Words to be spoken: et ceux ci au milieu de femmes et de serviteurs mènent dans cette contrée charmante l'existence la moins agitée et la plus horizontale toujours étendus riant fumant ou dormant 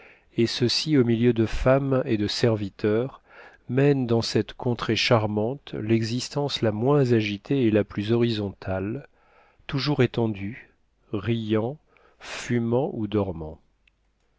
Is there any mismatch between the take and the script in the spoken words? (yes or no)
no